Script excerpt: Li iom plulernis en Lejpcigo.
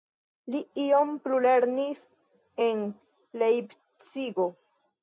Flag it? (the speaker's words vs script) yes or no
no